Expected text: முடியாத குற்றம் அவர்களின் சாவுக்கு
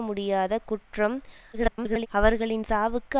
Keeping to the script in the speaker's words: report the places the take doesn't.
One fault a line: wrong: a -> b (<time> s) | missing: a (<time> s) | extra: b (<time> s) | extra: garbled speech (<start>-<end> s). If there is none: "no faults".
extra: garbled speech (1.5-2.1 s)